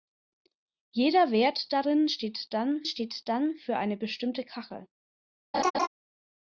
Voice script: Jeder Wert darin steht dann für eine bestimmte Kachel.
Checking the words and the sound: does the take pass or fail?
fail